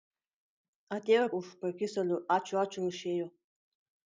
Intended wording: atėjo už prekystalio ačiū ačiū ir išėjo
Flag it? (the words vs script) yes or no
no